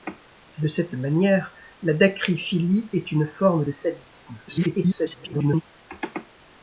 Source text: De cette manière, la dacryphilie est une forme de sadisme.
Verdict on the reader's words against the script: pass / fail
fail